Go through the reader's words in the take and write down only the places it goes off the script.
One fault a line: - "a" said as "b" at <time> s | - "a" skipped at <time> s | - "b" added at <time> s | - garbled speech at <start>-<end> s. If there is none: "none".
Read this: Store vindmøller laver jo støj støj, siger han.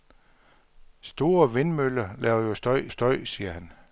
none